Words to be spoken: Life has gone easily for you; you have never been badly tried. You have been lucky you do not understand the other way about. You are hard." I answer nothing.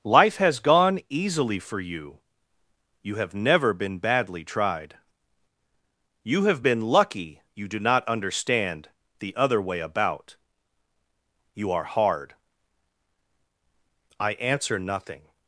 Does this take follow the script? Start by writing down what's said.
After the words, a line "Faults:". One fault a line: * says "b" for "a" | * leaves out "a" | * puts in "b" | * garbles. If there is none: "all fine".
Life has gone easily for you; you have never been badly tried. You have been lucky you do not understand the other way about. You are hard." I answer nothing.
Faults:
all fine